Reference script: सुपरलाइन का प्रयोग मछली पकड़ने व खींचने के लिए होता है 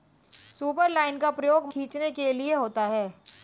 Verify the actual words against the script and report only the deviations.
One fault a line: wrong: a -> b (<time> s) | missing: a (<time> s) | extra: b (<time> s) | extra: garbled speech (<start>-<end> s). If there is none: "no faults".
missing: मछली पकड़ने व (1.7 s)